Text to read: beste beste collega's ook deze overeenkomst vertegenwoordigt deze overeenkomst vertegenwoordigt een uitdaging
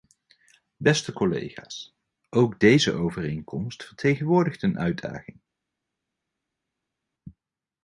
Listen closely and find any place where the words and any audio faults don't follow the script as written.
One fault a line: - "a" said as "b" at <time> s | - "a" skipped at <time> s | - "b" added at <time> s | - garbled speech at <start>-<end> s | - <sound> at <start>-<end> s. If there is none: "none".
- "beste" skipped at 1.1 s
- "deze overeenkomst vertegenwoordigt" skipped at 4.6 s